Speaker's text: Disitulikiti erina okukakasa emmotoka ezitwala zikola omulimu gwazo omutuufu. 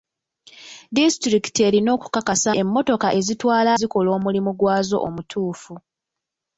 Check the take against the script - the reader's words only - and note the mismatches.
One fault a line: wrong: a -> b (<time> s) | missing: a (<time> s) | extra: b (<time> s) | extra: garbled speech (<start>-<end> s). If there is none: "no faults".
no faults